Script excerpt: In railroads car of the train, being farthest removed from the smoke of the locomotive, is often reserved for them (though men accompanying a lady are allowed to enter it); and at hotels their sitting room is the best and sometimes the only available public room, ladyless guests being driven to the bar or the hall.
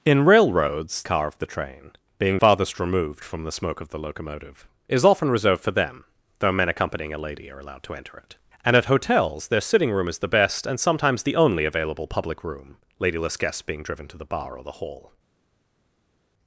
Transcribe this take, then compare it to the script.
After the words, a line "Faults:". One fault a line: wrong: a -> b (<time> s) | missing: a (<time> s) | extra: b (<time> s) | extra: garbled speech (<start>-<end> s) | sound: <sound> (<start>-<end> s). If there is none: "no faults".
In railroads car of the train, being farthest removed from the smoke of the locomotive, is often reserved for them (though men accompanying a lady are allowed to enter it); and at hotels their sitting room is the best and sometimes the only available public room, ladyless guests being driven to the bar or the hall.
Faults:
no faults